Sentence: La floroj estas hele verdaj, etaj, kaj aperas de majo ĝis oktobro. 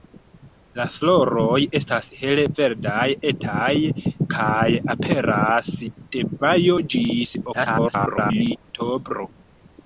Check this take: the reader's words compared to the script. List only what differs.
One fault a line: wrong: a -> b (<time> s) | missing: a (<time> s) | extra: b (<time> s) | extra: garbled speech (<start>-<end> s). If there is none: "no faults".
extra: garbled speech (7.5-8.6 s)